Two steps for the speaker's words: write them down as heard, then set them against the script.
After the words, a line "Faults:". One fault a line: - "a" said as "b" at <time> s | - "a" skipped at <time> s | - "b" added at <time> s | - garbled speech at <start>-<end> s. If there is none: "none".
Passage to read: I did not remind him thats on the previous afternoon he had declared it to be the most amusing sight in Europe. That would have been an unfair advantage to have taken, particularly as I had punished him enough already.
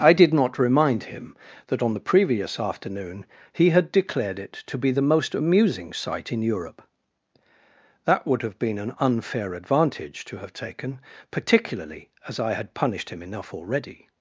I did not remind him that on the previous afternoon he had declared it to be the most amusing sight in Europe. That would have been an unfair advantage to have taken, particularly as I had punished him enough already.
Faults:
- "thats" said as "that" at 1.7 s